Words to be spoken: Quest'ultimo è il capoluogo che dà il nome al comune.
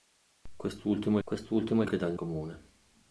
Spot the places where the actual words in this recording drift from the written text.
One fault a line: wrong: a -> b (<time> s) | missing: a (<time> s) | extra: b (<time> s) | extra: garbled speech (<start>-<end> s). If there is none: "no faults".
extra: quest'ultimo (1.2 s)
missing: capoluogo (1.9 s)
missing: nome al (2.2 s)